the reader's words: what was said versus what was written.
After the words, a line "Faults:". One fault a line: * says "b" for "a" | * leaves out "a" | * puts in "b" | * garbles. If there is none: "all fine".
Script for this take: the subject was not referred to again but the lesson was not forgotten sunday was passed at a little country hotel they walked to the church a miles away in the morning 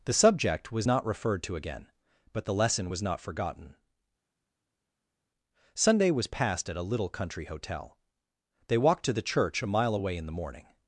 the subject was not referred to again but the lesson was not forgotten sunday was passed at a little country hotel they walked to the church a mile away in the morning
Faults:
* says "mile" for "miles"